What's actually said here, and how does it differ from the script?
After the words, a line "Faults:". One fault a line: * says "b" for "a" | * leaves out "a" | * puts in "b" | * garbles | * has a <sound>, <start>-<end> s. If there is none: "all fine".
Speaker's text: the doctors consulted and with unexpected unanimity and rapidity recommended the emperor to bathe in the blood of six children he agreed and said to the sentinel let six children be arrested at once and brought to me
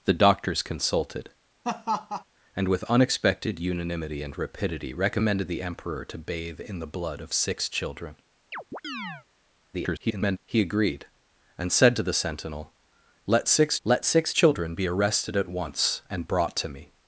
the doctors consulted and with unexpected unanimity and rapidity recommended the emperor to bathe in the blood of six children [garbled] he agreed and said to the sentinel let six let six children be arrested at once and brought to me
Faults:
* has a laugh, 1.6-2.2 s
* has a chirp, 8.5-9.3 s
* garbles
* puts in "let six"